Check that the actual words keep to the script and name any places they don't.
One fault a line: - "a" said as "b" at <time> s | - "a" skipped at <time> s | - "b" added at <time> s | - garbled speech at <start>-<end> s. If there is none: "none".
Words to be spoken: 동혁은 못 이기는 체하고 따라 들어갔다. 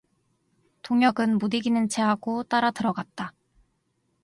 none